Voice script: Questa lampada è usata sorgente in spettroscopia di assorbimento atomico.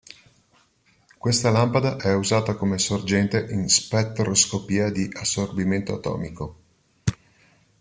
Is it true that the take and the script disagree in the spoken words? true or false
true